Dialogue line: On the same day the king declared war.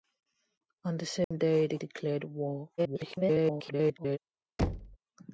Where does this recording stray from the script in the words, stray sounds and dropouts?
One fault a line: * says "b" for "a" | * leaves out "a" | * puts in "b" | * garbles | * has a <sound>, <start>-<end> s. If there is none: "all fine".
* has a dropout, 1.2-1.3 s
* leaves out "king"
* garbles
* has a thud, 4.6-5.0 s